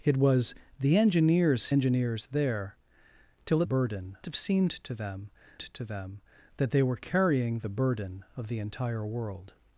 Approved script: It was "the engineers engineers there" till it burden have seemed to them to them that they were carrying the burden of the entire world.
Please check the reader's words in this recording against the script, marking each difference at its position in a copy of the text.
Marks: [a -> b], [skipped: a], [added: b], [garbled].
It was "the engineers engineers there" till it burden have seemed to them to them that they were carrying the burden of the entire world.